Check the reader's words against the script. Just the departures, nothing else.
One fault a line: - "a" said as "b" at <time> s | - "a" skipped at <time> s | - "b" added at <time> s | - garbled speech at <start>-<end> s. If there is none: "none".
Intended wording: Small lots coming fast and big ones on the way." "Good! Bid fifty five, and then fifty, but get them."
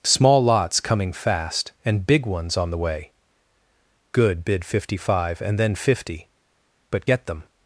none